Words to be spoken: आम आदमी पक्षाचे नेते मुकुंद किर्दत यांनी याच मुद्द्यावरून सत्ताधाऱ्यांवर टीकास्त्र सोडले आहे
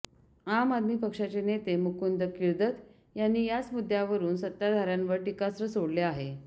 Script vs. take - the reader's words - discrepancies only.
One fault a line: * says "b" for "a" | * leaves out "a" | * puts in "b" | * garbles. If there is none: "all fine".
all fine